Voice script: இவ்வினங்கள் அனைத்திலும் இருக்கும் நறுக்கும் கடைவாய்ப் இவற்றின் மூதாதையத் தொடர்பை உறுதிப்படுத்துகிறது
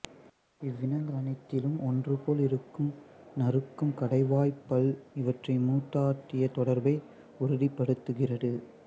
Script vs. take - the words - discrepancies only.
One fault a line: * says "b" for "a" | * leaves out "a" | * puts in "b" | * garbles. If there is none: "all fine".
* puts in "ஒன்றுபோல்"
* puts in "பல்"